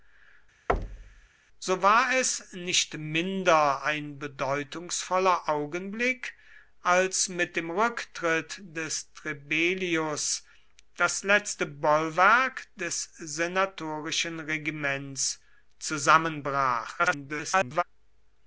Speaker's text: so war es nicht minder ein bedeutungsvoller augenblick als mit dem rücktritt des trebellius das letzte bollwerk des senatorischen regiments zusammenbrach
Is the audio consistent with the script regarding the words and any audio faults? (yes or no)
no